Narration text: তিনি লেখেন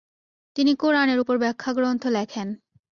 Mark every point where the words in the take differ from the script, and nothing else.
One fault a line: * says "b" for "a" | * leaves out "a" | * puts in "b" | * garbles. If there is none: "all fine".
* puts in "কুরআনের উপর ব্যাখ্যাগ্রন্থ"